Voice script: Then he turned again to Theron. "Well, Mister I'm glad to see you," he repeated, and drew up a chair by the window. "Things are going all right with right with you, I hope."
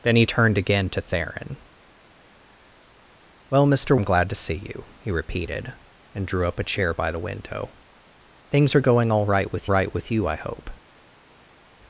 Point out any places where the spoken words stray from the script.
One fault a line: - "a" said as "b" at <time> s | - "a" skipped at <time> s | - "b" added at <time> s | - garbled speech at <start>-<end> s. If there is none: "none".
none